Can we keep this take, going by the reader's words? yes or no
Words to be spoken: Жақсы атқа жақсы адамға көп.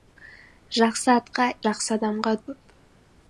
yes